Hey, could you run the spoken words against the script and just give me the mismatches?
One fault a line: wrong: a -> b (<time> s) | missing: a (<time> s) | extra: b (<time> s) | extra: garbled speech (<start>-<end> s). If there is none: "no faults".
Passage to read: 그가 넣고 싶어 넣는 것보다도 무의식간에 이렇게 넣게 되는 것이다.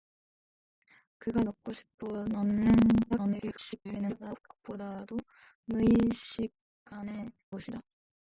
extra: garbled speech (3.1-4.4 s)
missing: 이렇게 넣게 되는 (7.3 s)